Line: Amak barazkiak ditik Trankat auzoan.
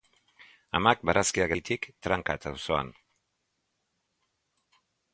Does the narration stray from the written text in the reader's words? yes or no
no